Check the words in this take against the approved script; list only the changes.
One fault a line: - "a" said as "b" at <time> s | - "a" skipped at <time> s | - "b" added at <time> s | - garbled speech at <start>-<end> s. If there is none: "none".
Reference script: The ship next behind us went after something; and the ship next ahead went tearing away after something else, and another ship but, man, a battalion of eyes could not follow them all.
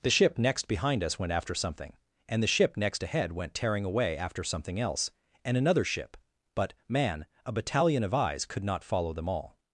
none